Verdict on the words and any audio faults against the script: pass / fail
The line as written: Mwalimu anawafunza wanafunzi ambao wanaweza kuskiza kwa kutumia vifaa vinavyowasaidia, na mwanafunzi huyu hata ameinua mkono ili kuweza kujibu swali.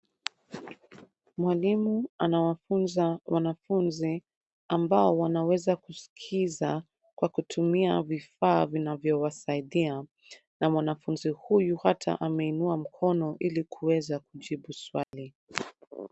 fail